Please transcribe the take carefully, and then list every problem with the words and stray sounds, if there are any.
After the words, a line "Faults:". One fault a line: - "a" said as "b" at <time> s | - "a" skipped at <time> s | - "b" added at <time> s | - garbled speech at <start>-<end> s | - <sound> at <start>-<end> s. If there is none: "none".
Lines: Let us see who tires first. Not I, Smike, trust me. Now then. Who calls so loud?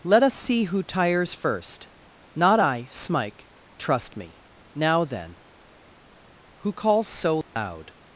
Let us see who tires first. Not I, Smike, trust me. Now then. Who calls so loud?
Faults:
- dropout at 7.4-7.6 s